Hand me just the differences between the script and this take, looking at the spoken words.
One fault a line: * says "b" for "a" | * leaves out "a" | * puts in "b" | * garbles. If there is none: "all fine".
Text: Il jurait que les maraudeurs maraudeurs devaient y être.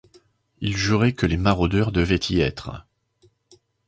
* leaves out "maraudeurs"